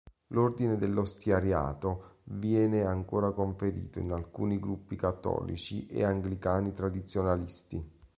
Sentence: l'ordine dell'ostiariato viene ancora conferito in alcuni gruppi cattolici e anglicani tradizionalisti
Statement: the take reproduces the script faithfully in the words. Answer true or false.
true